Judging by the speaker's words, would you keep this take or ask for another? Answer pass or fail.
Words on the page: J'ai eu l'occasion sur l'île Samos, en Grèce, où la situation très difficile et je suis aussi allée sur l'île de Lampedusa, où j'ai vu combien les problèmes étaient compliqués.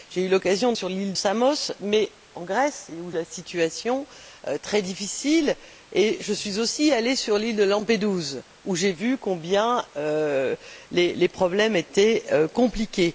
pass